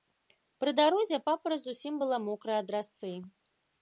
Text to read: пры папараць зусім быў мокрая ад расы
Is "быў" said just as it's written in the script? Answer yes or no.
no